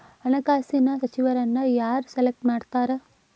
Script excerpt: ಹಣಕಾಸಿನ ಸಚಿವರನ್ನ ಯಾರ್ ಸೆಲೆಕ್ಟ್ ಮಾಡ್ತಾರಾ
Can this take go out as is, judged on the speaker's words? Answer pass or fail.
pass